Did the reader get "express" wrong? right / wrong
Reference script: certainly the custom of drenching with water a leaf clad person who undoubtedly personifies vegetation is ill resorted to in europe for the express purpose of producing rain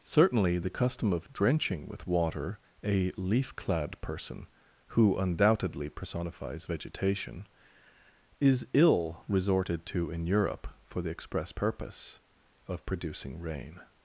right